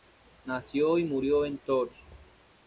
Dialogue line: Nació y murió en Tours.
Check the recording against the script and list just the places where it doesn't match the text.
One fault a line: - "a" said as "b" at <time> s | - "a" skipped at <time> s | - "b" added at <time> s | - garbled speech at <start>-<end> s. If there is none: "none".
none